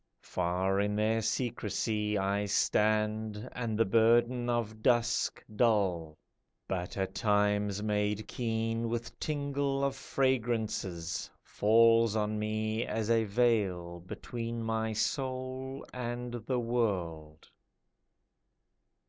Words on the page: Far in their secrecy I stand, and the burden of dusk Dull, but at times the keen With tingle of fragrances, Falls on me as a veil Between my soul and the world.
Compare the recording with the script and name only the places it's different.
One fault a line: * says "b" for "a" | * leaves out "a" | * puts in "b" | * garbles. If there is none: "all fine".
* says "made" for "the"